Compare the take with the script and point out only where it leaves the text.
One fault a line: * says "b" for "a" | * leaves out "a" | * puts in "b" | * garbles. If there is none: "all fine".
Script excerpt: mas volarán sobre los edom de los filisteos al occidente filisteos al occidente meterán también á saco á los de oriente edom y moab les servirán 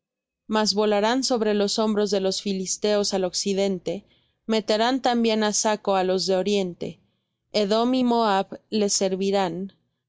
* says "hombros" for "edom"
* leaves out "filisteos al occidente"